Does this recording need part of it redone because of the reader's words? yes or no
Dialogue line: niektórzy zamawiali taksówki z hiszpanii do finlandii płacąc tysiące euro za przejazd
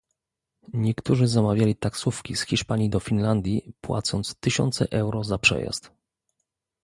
no